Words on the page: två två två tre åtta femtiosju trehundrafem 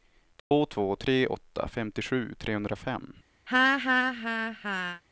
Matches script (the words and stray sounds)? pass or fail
fail